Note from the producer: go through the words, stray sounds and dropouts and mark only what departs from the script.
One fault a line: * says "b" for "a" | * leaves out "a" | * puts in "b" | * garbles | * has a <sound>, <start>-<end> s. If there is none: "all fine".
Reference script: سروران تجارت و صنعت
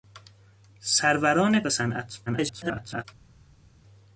* leaves out "تجارت"
* garbles